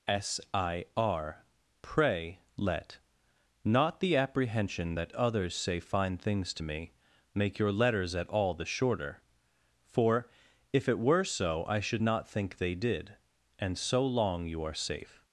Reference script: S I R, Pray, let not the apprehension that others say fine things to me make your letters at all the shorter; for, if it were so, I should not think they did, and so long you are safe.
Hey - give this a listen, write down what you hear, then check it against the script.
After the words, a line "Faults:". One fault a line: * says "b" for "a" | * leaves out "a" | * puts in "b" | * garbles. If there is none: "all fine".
S I R, Pray, let not the apprehension that others say fine things to me make your letters at all the shorter; for, if it were so, I should not think they did, and so long you are safe.
Faults:
all fine